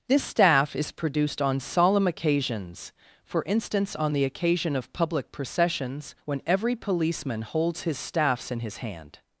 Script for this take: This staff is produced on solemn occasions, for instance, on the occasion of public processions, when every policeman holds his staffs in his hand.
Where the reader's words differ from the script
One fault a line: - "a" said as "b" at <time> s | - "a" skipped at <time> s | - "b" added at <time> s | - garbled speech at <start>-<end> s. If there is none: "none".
none